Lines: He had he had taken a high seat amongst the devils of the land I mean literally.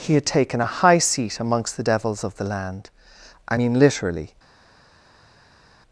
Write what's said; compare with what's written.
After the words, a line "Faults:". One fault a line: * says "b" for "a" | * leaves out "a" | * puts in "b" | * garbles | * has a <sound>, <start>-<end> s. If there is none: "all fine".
He had taken a high seat amongst the devils of the land I mean literally.
Faults:
* leaves out "he had"